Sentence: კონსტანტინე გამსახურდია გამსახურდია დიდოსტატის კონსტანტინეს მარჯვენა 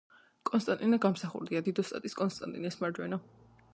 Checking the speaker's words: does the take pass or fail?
fail